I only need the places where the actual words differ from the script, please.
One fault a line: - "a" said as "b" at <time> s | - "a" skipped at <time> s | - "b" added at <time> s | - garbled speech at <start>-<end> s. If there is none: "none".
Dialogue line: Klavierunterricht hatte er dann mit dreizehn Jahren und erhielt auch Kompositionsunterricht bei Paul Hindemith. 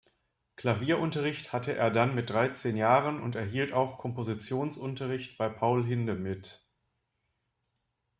none